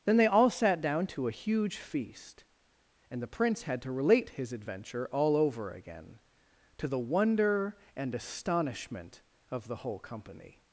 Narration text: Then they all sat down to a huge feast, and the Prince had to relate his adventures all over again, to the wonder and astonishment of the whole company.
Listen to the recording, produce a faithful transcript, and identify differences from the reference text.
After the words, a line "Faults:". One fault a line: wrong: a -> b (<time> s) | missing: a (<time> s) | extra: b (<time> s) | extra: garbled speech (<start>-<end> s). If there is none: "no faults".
Then they all sat down to a huge feast, and the Prince had to relate his adventure all over again, to the wonder and astonishment of the whole company.
Faults:
wrong: adventures -> adventure (4.5 s)